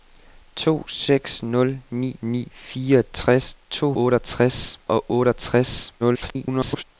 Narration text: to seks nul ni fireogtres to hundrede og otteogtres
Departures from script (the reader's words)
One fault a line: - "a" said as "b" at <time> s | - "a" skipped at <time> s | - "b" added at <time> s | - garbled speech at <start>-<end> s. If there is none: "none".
- "ni" added at 2.2 s
- "hundrede" said as "otteogtres" at 4.0 s
- garbled speech at 6.0-6.8 s